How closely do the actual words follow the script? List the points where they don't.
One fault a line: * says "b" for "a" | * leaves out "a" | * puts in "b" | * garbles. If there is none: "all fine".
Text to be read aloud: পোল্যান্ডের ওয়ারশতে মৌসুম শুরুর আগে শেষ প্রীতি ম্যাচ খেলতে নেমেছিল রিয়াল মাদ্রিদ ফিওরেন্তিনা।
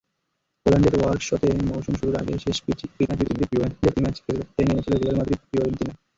* garbles